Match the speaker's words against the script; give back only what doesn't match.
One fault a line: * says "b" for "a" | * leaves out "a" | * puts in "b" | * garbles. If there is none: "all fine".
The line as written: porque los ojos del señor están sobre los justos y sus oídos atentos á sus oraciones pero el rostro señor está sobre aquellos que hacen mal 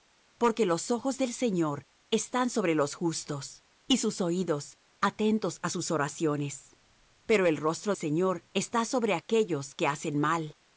all fine